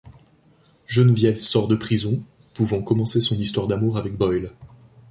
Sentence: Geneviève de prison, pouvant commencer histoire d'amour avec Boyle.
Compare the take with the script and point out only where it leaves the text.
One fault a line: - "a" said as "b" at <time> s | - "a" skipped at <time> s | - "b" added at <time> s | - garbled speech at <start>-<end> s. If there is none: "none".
- "sort" added at 1.4 s
- "son" added at 3.2 s